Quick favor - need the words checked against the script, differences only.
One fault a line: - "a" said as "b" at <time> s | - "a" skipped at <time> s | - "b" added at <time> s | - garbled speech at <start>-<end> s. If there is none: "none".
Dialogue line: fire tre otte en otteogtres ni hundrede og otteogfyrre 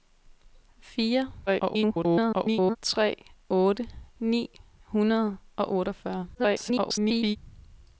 - garbled speech at 1.5-2.8 s
- "en otteogtres" skipped at 3.9 s
- garbled speech at 6.3-7.4 s